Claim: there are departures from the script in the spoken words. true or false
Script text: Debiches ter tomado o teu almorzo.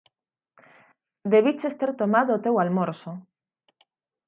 false